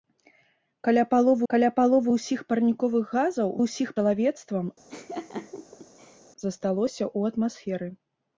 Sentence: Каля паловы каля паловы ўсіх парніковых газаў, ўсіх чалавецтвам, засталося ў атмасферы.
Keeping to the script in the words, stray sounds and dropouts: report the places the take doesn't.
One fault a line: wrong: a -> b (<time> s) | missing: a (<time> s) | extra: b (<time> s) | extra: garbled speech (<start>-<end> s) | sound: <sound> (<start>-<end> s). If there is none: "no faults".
sound: laugh (4.9-6.2 s)